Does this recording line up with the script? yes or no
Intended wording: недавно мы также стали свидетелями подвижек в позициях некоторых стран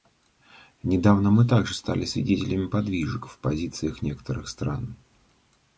yes